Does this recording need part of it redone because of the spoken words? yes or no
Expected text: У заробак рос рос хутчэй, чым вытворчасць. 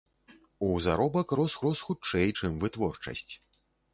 no